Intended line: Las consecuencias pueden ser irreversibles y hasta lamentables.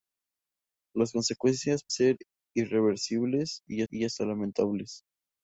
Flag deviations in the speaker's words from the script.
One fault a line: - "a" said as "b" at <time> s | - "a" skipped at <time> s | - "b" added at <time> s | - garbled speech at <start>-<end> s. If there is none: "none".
- "pueden" skipped at 1.8 s
- "y" added at 3.9 s